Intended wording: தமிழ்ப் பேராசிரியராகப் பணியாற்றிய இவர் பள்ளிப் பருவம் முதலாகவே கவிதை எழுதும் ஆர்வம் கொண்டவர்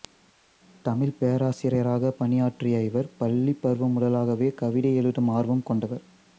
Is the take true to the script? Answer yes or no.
yes